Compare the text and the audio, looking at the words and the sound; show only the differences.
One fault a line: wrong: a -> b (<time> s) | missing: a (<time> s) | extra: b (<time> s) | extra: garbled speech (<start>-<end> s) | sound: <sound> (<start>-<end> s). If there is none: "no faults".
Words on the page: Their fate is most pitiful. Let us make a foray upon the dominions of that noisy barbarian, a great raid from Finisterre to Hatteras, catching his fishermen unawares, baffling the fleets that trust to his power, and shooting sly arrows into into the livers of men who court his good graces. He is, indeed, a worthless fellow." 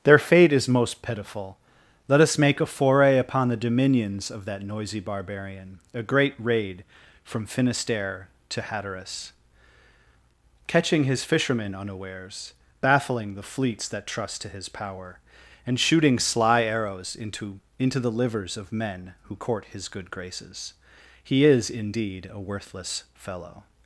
no faults